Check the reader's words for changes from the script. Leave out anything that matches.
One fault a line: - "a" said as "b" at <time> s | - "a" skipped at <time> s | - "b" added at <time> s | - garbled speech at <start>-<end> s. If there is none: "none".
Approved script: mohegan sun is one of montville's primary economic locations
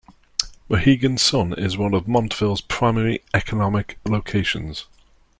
none